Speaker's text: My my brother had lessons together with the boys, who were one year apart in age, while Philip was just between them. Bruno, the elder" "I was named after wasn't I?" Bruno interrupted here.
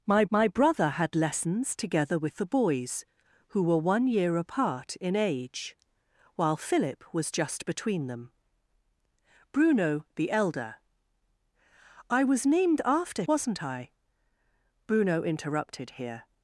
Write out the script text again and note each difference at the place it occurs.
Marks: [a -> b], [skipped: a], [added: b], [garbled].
My my brother had lessons together with the boys, who were one year apart in age, while Philip was just between them. Bruno, the elder" "I was named after wasn't I?" Bruno interrupted here.